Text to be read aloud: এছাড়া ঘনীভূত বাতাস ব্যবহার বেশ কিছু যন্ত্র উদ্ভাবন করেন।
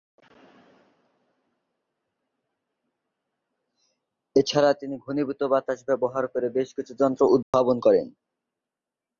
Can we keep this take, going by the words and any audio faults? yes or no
no